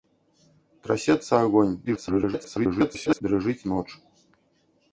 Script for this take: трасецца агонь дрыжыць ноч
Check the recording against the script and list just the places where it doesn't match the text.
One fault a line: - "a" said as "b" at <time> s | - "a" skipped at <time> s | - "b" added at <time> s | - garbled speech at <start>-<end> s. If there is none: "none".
- garbled speech at 1.8-3.2 s